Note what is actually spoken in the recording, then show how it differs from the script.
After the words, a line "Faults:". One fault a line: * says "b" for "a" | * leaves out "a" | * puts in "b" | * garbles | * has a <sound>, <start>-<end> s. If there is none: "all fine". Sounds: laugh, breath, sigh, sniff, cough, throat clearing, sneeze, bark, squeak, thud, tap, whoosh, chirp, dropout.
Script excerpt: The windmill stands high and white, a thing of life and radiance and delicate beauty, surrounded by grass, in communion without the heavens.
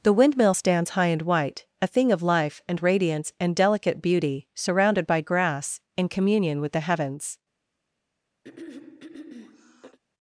The windmill stands high and white, a thing of life and radiance and delicate beauty, surrounded by grass, in communion with the heavens.
Faults:
* says "with" for "without"
* has a throat clearing, 8.4-10.0 s